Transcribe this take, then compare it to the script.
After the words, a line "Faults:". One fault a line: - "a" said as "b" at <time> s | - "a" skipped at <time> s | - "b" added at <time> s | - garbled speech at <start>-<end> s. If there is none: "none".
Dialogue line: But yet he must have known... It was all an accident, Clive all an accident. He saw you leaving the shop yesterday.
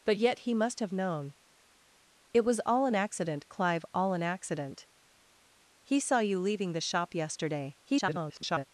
But yet he must have known... It was all an accident, Clive all an accident. He saw you leaving the shop yesterday. [garbled]
Faults:
- garbled speech at 7.8-8.6 s